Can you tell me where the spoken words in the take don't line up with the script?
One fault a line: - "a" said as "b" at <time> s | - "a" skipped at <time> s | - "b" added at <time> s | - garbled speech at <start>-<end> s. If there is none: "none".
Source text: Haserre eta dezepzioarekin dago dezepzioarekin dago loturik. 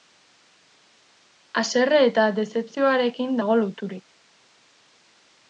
- "dezepzioarekin dago" skipped at 3.6 s